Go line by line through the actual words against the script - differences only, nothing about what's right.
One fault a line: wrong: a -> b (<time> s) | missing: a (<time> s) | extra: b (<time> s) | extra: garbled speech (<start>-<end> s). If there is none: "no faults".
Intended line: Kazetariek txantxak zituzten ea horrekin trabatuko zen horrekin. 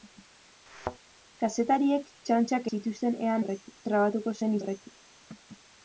no faults